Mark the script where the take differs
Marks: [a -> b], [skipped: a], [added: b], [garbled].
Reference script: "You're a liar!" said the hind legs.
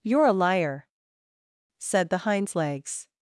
"You're a liar!" said the [hind -> hinds] legs.